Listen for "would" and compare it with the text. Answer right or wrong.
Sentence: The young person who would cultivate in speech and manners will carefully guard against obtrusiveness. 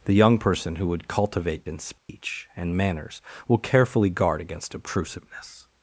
right